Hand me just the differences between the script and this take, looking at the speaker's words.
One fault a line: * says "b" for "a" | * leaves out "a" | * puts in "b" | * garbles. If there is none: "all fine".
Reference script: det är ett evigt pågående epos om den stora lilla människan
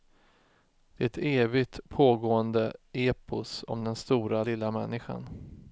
all fine